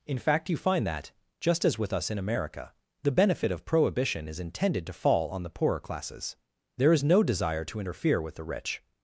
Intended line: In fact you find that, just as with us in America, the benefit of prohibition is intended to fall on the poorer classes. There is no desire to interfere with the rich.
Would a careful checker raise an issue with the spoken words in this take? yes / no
no